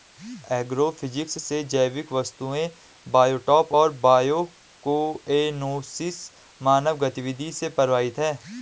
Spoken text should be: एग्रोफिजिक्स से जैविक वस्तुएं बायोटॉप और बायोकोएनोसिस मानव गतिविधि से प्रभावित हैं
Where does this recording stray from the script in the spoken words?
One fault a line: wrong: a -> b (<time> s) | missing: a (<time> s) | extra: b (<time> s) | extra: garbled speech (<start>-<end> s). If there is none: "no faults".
no faults